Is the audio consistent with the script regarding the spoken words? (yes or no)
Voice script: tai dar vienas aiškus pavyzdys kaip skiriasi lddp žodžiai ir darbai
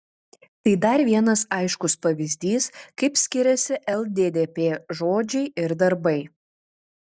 yes